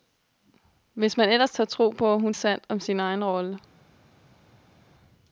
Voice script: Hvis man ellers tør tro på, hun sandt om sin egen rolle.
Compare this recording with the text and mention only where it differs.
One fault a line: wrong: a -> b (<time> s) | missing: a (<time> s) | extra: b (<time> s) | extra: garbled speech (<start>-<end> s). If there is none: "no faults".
no faults